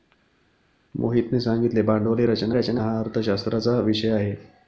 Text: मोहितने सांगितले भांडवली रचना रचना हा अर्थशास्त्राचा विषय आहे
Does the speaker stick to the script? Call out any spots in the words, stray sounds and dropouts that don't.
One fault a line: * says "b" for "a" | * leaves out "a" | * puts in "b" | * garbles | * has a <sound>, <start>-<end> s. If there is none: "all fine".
all fine